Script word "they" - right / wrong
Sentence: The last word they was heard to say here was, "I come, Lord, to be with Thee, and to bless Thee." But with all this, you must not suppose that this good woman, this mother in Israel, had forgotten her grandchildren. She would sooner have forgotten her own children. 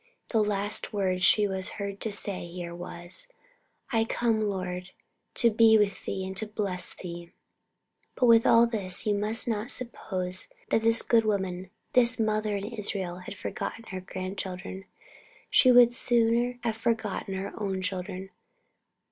wrong